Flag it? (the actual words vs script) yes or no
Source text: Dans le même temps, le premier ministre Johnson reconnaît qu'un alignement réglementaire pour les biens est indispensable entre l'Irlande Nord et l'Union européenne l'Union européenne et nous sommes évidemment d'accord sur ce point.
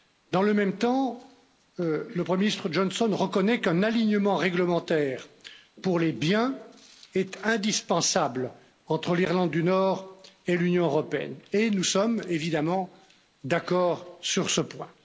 yes